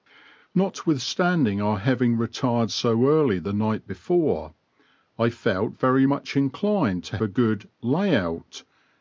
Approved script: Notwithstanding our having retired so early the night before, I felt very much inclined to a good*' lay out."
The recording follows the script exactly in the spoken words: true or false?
true